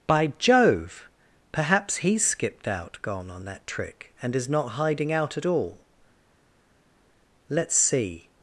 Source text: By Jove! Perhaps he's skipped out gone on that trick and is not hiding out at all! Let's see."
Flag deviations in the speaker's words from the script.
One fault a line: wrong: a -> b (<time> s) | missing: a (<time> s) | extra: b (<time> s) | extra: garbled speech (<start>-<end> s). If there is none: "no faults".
no faults